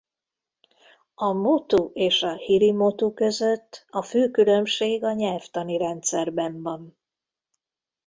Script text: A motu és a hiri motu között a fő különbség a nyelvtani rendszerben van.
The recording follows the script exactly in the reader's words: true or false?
true